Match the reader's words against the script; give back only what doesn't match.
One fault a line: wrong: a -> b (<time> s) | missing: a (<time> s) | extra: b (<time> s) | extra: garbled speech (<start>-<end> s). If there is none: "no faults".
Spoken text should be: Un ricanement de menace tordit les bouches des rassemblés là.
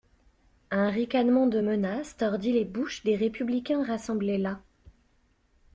extra: républicains (3.2 s)